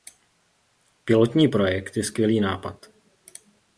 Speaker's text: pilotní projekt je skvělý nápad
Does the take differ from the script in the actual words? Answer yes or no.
no